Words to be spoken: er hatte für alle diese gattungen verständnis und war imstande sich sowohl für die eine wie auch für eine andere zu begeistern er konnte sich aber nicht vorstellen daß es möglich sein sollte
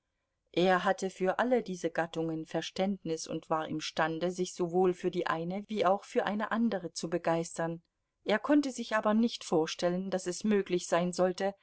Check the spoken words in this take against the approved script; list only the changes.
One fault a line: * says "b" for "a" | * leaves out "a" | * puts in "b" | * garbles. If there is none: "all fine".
all fine